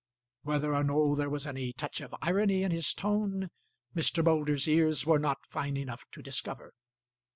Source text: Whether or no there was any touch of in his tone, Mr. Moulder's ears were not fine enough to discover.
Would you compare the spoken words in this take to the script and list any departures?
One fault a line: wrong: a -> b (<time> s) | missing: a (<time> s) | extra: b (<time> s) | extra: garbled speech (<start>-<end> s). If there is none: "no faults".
extra: irony (2.2 s)